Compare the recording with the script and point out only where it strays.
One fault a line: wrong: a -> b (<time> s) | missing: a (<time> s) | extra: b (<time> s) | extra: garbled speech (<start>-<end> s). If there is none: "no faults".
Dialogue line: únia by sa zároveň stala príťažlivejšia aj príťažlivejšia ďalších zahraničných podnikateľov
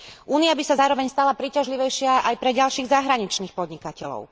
wrong: príťažlivejšia -> pre (2.4 s)